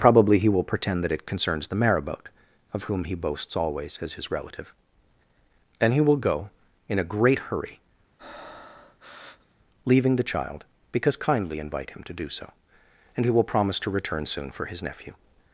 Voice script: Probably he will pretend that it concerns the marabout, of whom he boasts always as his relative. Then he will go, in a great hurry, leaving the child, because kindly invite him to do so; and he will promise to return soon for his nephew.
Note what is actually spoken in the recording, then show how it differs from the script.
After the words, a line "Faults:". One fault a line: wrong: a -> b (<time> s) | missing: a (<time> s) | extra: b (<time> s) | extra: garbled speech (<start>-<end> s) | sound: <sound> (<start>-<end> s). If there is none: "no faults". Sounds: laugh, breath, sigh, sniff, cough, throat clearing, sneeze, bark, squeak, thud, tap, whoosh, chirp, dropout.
Probably he will pretend that it concerns the marabout, of whom he boasts always as his relative. Then he will go, in a great hurry, leaving the child, because kindly invite him to do so; and he will promise to return soon for his nephew.
Faults:
sound: breath (8.2-9.6 s)